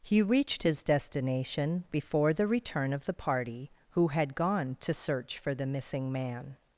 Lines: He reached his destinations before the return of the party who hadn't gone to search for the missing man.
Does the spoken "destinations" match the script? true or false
false